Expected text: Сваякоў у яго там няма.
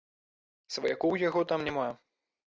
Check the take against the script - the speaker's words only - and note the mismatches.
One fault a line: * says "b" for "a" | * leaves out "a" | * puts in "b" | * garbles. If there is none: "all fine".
all fine